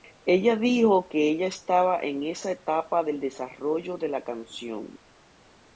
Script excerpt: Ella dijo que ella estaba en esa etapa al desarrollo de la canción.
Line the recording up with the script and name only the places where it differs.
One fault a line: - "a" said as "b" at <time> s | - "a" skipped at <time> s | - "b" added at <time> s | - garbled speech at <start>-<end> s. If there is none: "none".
- "al" said as "del" at 3.0 s